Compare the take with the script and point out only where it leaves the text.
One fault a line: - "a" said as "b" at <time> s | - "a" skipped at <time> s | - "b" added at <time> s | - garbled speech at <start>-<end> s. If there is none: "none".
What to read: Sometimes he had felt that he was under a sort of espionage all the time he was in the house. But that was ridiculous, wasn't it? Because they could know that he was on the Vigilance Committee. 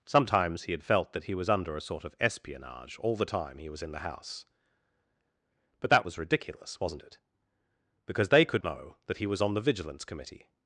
none